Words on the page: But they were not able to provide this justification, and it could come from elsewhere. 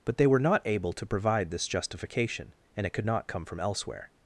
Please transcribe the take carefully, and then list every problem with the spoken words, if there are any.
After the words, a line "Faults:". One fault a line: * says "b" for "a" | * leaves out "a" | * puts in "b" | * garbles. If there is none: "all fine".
But they were not able to provide this justification, and it could not come from elsewhere.
Faults:
* puts in "not"